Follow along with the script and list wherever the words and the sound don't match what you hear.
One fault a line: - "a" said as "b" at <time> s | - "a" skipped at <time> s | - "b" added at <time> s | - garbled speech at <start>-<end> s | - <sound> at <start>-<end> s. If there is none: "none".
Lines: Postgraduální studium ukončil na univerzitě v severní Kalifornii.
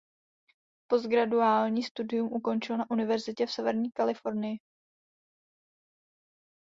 none